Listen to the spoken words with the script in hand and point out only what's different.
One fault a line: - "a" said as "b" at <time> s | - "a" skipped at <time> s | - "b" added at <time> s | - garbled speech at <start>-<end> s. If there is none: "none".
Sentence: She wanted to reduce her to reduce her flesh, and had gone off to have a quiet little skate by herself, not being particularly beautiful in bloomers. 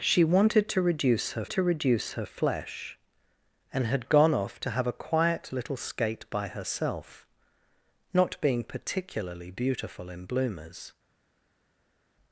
none